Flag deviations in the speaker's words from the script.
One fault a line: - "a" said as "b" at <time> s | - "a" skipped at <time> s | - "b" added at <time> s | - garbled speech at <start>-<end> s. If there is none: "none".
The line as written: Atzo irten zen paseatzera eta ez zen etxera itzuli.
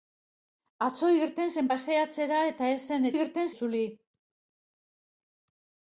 - "etxera" said as "irten" at 3.1 s